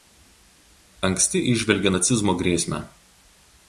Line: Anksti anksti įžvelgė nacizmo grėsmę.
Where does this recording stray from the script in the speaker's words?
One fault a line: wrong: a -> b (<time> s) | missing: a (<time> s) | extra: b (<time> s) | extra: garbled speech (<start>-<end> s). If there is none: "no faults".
missing: anksti (1.4 s)